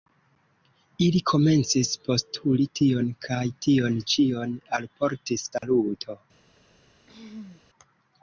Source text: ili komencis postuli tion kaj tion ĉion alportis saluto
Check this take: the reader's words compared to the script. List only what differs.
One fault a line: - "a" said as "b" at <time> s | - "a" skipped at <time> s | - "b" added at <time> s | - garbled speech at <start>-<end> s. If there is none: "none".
none